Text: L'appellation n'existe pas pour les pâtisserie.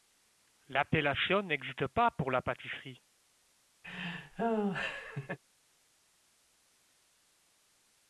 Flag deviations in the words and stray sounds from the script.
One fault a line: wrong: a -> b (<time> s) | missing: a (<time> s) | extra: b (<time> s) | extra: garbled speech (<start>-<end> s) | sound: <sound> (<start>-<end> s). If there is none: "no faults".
wrong: les -> la (2.3 s)
sound: laugh (3.8-5.4 s)